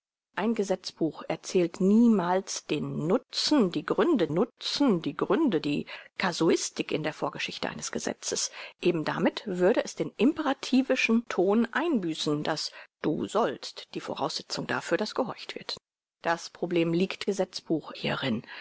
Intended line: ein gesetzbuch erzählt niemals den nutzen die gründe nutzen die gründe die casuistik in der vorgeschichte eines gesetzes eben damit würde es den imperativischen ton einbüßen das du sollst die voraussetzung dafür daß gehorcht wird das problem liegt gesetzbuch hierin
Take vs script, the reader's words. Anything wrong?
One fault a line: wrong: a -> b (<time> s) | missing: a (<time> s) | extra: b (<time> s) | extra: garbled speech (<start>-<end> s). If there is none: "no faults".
no faults